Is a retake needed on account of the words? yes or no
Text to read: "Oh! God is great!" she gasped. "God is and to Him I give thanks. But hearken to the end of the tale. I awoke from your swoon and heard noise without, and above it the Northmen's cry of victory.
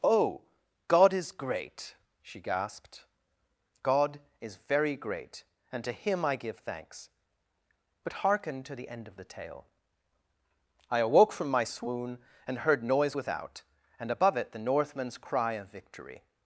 yes